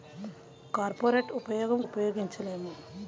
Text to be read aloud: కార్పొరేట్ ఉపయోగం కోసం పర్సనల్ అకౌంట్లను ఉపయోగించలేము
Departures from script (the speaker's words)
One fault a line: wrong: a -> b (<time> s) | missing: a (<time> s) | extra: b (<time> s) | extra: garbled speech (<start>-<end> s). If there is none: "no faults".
missing: కోసం పర్సనల్ అకౌంట్లను (1.8 s)